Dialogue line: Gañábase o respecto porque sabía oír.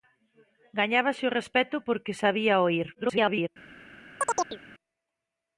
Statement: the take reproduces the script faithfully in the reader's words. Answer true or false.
false